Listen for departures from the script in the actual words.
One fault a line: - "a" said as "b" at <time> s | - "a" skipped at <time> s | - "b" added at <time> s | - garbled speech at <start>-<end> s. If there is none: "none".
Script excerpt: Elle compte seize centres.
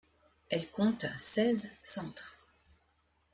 none